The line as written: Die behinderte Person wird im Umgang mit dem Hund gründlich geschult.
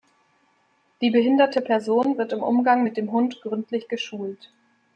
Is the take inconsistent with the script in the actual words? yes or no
no